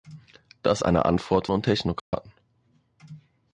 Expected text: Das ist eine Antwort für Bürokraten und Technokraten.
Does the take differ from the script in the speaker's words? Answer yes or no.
yes